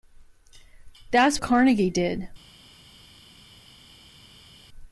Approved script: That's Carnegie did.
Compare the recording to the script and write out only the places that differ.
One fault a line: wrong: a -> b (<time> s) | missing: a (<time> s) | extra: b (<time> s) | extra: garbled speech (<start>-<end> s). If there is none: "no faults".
no faults